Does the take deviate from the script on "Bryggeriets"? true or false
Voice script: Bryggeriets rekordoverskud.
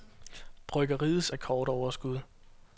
false